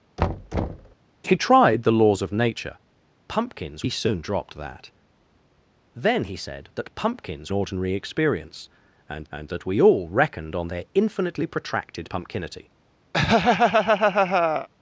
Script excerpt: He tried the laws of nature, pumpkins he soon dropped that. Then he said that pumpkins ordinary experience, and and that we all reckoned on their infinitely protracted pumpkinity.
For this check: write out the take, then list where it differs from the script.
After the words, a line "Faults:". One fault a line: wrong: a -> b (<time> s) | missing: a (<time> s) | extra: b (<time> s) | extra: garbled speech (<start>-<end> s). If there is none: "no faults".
He tried the laws of nature, pumpkins he soon dropped that. Then he said that pumpkins ordinary experience, and and that we all reckoned on their infinitely protracted pumpkinity.
Faults:
no faults